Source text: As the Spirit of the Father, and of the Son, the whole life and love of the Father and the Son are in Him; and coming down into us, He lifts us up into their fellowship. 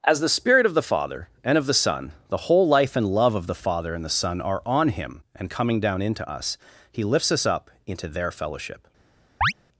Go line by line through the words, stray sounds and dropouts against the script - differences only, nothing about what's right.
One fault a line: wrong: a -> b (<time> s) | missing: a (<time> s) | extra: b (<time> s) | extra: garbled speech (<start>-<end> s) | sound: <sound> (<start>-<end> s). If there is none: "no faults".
wrong: in -> on (4.7 s)
sound: chirp (9.4-9.5 s)